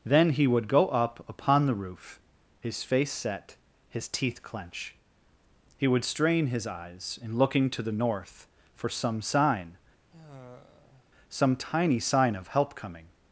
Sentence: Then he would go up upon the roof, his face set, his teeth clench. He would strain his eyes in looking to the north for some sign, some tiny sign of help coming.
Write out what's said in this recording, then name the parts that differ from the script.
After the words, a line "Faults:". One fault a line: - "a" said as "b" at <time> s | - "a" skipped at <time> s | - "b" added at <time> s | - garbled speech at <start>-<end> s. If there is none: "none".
Then he would go up upon the roof, his face set, his teeth clench. He would strain his eyes in looking to the north for some sign, some tiny sign of help coming.
Faults:
none